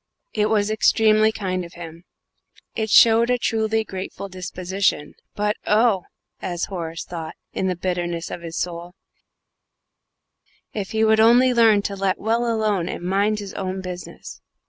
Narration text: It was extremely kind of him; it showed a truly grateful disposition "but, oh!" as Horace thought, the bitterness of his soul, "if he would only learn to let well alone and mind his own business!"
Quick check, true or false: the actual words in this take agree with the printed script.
false